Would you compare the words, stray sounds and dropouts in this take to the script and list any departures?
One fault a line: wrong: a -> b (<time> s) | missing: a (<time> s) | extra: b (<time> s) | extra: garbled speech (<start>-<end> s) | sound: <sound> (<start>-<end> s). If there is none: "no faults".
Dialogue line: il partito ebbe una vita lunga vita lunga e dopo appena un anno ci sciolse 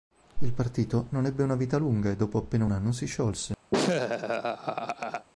extra: non (1.1 s)
missing: vita lunga (2.1 s)
wrong: ci -> si (2.9 s)
sound: laugh (3.7-5.3 s)